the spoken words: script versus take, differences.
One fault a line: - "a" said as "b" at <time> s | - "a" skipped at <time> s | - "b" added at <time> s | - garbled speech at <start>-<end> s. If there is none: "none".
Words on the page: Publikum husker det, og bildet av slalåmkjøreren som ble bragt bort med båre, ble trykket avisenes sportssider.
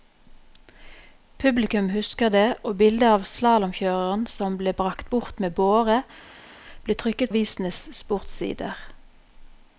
none